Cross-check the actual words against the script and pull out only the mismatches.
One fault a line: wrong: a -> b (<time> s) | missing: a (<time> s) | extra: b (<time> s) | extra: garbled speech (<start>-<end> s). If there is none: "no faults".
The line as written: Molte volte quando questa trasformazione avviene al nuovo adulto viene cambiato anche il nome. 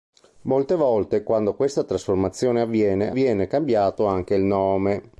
missing: al nuovo adulto (3.1 s)